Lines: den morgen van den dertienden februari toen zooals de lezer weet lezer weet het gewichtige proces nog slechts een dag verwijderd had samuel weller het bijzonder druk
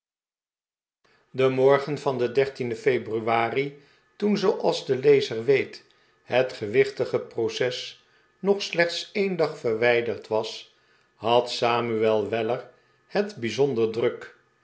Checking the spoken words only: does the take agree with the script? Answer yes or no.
no